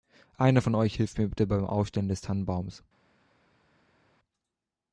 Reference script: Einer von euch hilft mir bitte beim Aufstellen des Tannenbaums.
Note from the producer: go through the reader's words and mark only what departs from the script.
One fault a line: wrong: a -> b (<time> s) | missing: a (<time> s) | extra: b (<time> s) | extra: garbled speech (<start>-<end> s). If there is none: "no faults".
no faults